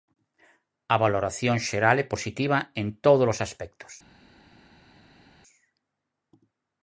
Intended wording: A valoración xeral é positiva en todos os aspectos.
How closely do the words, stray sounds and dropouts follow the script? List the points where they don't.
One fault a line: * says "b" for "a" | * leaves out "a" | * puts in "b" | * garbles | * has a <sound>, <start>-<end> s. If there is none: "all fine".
all fine